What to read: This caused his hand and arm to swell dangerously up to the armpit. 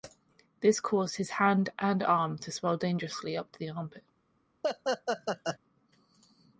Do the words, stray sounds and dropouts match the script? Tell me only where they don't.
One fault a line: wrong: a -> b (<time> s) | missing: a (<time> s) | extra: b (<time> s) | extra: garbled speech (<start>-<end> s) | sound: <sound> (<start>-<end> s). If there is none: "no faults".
sound: laugh (4.6-5.6 s)